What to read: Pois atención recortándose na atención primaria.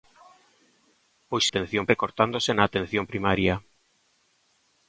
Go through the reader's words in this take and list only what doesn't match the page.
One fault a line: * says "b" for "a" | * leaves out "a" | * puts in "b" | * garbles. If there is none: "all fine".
all fine